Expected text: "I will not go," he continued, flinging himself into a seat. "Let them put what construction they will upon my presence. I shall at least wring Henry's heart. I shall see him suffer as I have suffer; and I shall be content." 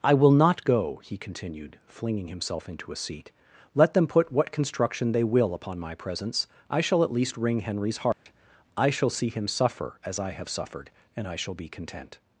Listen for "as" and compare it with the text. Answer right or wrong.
right